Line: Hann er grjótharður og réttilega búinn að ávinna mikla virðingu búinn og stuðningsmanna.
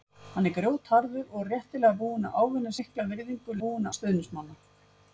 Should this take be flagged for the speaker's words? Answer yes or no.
no